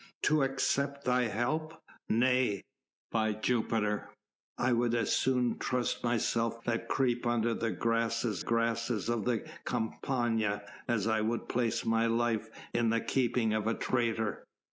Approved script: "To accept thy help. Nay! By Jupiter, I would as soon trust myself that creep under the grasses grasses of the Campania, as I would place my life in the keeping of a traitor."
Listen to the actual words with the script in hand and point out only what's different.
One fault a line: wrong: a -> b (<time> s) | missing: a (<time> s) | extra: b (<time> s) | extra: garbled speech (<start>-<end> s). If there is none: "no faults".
no faults